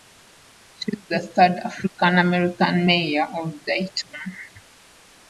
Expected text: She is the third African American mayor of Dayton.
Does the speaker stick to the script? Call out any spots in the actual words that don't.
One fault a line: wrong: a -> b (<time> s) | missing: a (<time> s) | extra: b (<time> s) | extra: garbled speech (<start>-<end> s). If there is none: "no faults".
no faults